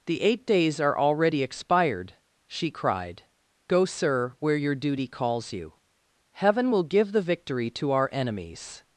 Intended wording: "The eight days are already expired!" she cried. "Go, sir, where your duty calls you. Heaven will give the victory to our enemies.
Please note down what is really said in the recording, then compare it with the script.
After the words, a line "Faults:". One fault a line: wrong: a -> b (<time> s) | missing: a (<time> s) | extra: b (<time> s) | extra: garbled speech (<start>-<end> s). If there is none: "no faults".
"The eight days are already expired!" she cried. "Go, sir, where your duty calls you. Heaven will give the victory to our enemies.
Faults:
no faults